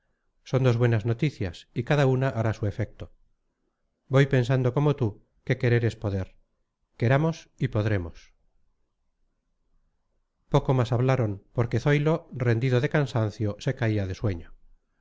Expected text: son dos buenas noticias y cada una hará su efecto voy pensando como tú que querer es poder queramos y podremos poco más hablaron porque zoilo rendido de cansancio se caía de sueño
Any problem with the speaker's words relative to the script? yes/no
no